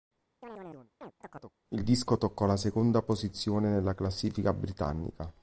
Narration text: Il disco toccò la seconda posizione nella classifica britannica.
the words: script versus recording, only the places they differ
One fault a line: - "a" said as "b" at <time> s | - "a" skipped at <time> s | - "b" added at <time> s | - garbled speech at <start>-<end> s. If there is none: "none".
none